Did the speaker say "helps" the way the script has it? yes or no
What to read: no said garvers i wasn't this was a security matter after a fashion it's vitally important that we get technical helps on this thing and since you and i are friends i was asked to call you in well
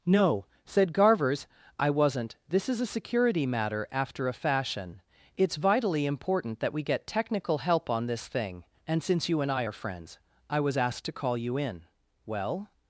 no